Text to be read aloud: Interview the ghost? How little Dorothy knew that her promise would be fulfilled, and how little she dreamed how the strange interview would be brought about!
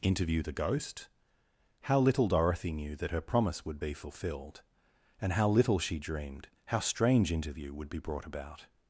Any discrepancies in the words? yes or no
yes